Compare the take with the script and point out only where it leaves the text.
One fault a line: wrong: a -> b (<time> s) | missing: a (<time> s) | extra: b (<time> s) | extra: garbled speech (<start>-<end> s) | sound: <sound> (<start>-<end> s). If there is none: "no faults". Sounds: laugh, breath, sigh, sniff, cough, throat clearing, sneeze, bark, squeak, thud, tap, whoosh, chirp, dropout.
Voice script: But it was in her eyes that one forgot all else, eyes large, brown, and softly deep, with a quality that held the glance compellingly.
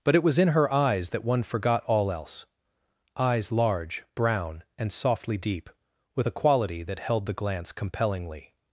no faults